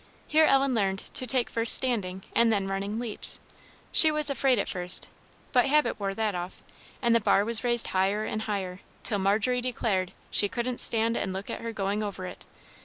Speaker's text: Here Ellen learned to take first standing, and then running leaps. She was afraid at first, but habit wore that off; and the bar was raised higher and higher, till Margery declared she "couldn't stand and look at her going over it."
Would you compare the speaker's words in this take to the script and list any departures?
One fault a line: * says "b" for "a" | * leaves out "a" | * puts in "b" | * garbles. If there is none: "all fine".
all fine